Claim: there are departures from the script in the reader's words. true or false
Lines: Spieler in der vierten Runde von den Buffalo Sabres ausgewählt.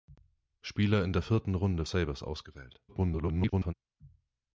true